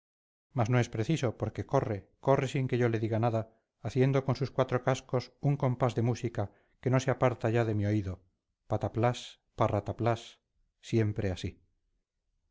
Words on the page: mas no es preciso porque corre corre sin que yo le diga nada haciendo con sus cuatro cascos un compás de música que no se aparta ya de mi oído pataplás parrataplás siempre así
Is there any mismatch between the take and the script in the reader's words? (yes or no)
no